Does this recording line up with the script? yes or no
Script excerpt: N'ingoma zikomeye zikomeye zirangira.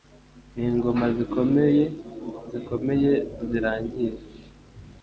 yes